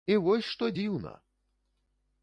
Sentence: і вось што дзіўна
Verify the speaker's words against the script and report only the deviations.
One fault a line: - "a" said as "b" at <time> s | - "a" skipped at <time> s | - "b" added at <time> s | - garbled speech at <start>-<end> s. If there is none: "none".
none